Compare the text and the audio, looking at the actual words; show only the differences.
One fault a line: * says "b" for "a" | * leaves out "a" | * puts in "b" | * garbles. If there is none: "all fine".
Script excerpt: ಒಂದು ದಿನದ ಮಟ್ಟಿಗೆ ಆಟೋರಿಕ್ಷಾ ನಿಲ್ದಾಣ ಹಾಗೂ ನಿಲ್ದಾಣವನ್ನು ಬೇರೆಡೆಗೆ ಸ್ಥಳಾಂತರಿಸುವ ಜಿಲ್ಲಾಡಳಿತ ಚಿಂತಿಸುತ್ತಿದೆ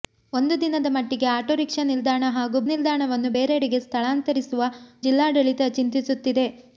all fine